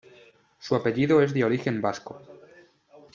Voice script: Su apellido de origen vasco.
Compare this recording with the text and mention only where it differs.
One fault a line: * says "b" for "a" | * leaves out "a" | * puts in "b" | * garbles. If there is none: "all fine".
* puts in "es"